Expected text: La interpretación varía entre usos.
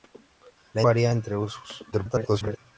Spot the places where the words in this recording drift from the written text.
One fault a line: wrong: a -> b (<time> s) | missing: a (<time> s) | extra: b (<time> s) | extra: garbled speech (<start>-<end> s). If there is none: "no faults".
missing: interpretación (0.8 s)
extra: garbled speech (1.9-2.6 s)